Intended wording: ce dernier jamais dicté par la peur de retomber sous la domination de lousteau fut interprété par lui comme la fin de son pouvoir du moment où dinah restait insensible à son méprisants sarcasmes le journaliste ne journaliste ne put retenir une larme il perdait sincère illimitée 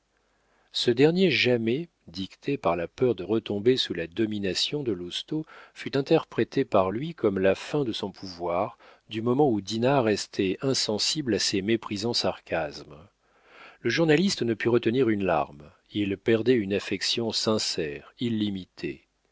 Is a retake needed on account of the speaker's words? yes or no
yes